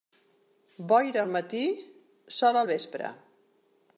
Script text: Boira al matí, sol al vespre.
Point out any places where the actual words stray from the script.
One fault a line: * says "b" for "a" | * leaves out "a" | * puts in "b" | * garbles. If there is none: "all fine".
all fine